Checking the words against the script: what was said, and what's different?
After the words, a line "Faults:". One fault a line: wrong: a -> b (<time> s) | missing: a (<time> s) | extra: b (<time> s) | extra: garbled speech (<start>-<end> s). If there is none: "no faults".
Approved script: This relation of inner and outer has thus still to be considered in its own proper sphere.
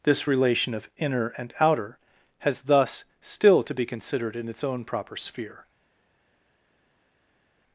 This relation of inner and outer has thus still to be considered in its own proper sphere.
Faults:
no faults